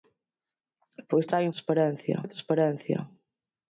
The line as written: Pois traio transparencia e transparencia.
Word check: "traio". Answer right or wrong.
right